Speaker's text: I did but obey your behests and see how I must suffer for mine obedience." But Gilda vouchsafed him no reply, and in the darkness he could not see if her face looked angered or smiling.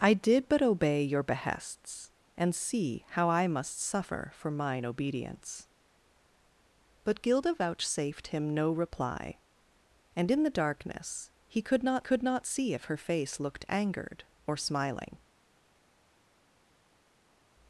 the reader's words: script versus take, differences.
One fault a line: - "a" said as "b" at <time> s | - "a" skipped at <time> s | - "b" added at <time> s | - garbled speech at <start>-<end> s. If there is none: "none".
- "could not" added at 12.0 s